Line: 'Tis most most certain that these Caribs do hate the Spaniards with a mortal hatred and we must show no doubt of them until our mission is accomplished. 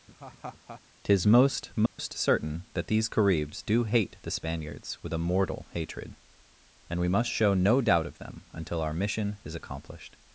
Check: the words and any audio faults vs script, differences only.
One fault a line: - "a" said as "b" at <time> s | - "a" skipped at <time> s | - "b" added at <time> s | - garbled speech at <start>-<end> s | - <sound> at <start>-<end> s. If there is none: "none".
- laugh at 0.1-0.8 s
- dropout at 1.9-2.0 s